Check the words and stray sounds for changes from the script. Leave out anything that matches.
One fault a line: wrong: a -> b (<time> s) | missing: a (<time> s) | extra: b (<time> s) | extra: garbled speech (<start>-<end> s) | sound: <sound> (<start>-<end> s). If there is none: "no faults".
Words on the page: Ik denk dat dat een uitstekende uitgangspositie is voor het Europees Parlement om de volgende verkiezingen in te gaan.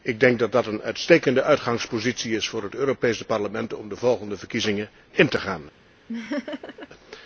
sound: laugh (6.1-6.9 s)